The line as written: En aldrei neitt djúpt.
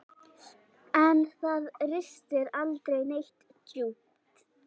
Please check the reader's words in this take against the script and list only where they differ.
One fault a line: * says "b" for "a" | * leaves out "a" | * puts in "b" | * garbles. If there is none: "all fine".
* puts in "það ristir"